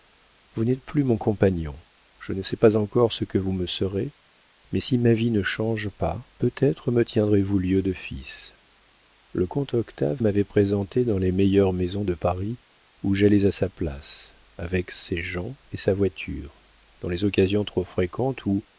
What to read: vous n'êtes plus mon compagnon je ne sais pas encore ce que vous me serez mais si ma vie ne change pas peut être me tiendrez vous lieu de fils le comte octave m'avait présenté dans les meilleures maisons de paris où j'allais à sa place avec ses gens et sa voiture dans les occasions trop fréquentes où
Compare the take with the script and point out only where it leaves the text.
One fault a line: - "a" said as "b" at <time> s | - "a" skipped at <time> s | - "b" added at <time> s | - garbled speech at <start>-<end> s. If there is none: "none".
none